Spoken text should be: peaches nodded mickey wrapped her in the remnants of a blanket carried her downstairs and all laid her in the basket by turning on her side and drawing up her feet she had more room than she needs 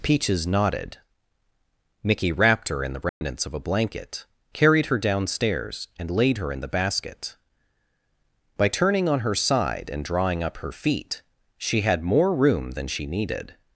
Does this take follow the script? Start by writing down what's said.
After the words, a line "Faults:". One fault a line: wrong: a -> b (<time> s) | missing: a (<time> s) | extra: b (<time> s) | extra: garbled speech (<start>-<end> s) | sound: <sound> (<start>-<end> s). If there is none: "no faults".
peaches nodded mickey wrapped her in the remnants of a blanket carried her downstairs and laid her in the basket by turning on her side and drawing up her feet she had more room than she needed
Faults:
sound: dropout (3.1-3.2 s)
missing: all (6.1 s)
wrong: needs -> needed (13.1 s)